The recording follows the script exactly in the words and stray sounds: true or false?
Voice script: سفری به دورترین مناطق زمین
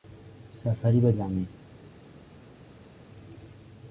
false